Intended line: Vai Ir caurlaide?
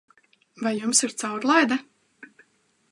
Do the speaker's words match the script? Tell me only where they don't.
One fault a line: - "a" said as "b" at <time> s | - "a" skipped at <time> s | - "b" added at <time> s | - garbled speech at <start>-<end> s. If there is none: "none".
- "Jums" added at 0.8 s